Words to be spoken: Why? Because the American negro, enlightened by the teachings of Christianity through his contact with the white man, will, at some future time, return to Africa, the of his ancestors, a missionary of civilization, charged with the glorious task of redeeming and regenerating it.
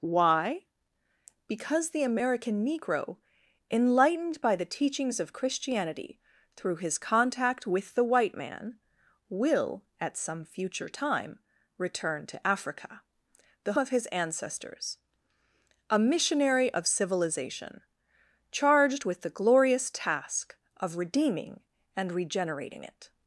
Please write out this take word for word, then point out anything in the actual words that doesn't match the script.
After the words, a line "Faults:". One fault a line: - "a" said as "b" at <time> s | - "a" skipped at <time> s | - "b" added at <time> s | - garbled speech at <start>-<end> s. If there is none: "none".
Why? Because the American negro, enlightened by the teachings of Christianity through his contact with the white man, will, at some future time, return to Africa, the of his ancestors, a missionary of civilization, charged with the glorious task of redeeming and regenerating it.
Faults:
none